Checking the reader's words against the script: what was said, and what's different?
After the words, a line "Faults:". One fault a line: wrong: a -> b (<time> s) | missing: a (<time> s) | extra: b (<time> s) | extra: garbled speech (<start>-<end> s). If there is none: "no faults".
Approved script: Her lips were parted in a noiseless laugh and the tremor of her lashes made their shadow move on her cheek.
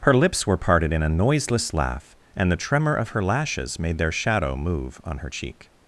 Her lips were parted in a noiseless laugh and the tremor of her lashes made their shadow move on her cheek.
Faults:
no faults